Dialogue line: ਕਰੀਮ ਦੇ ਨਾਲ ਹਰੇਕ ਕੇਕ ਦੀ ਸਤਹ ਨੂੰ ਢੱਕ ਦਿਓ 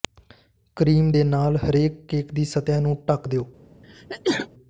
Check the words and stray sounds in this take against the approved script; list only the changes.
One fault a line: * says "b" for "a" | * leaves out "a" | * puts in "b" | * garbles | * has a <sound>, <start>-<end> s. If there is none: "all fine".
* has a sneeze, 3.8-4.5 s